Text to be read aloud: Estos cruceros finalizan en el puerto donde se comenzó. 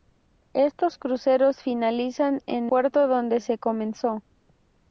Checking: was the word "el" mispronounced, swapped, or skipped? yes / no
yes